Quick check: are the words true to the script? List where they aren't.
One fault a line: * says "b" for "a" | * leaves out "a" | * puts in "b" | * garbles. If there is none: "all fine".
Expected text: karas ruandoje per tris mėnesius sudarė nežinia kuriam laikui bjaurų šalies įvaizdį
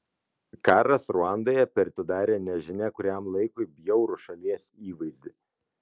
* leaves out "tris mėnesius"